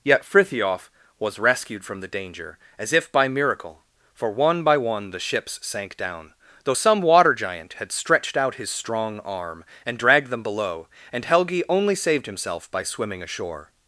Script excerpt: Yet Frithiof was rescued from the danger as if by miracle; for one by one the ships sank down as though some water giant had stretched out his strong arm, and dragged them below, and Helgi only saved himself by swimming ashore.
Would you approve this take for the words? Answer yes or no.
no